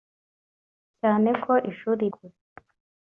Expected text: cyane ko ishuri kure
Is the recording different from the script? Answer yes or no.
no